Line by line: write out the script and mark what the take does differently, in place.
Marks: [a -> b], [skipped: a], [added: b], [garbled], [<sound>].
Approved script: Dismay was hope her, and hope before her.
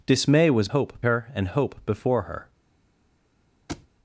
Dismay was hope her, and hope before her. [thud]